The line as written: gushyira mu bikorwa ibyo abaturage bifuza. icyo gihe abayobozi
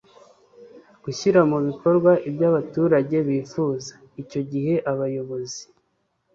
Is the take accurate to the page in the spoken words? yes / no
yes